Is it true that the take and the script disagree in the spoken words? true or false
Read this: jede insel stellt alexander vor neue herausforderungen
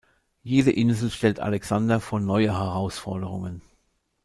false